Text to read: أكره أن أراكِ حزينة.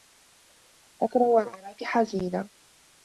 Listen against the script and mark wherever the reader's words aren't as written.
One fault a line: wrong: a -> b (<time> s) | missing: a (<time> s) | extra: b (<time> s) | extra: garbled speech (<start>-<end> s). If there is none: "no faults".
no faults